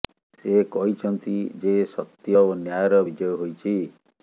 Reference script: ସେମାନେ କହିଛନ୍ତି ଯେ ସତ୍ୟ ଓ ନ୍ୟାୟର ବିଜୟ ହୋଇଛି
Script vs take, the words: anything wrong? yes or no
yes